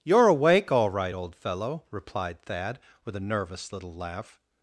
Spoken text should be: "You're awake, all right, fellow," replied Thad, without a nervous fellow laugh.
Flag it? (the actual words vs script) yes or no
yes